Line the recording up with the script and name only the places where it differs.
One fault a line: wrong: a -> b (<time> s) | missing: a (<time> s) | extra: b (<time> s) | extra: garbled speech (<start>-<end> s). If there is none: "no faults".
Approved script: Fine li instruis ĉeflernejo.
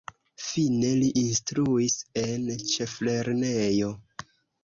extra: en (2.2 s)